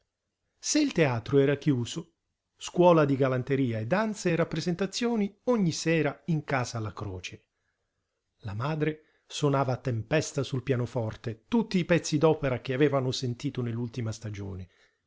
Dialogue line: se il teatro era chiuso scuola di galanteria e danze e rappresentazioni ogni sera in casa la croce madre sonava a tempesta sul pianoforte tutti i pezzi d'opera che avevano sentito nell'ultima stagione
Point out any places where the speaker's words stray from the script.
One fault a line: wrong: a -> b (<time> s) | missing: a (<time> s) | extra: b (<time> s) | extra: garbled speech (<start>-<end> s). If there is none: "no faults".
extra: la (8.4 s)